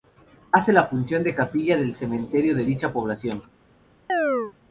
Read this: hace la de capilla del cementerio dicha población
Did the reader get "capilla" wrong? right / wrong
right